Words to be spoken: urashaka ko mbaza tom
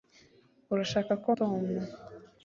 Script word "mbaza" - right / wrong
wrong